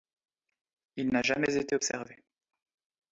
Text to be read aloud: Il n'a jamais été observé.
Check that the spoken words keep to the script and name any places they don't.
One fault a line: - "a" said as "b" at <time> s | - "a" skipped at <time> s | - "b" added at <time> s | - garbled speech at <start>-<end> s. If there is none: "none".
none